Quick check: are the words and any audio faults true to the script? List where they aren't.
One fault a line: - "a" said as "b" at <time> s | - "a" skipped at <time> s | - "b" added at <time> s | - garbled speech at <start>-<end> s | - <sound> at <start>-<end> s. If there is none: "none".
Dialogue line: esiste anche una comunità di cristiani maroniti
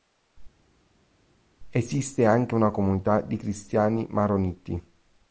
none